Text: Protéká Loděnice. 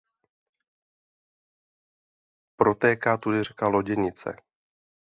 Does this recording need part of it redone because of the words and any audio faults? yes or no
yes